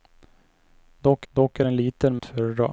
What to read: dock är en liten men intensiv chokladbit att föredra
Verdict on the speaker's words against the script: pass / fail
fail